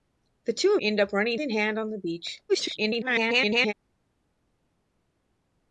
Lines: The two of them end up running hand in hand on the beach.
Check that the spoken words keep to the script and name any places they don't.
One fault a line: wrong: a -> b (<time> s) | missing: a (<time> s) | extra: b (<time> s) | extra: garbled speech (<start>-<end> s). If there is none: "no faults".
missing: them (0.8 s)
missing: hand (1.4 s)
extra: garbled speech (2.5-3.7 s)